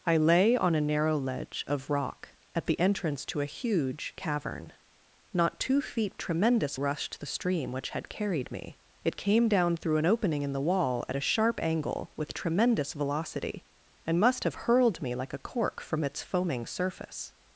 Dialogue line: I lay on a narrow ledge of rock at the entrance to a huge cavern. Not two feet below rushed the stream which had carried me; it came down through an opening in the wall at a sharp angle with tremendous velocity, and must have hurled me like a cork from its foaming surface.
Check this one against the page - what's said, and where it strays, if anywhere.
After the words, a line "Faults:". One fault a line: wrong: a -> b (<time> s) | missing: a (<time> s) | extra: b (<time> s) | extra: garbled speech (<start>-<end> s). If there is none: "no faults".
I lay on a narrow ledge of rock at the entrance to a huge cavern. Not two feet tremendous rushed the stream which had carried me; it came down through an opening in the wall at a sharp angle with tremendous velocity, and must have hurled me like a cork from its foaming surface.
Faults:
wrong: below -> tremendous (6.2 s)